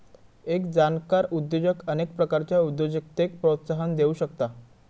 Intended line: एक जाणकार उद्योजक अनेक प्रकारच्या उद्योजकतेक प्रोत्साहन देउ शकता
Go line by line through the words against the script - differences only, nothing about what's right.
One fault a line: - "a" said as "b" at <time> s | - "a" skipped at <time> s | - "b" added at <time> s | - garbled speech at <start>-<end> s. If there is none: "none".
none